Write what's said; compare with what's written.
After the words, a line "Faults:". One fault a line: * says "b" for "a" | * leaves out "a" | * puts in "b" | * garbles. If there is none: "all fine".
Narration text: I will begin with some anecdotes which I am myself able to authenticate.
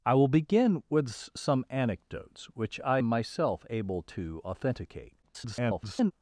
I will begin with some anecdotes which I myself able to authenticate. [garbled]
Faults:
* leaves out "am"
* garbles